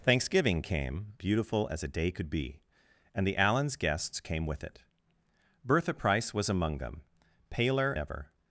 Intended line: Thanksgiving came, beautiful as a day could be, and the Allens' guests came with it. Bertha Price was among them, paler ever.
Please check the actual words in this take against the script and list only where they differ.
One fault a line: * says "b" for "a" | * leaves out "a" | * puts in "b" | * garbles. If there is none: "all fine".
all fine